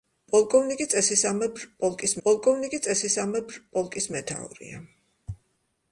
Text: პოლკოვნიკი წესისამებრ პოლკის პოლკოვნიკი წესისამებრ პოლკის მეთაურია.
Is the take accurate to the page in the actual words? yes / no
yes